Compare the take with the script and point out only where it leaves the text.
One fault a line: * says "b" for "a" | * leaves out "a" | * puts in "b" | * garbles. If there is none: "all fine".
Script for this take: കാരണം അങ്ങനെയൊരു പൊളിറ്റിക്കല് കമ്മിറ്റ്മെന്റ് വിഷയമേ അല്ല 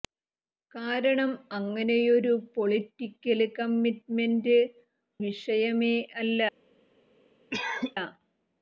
all fine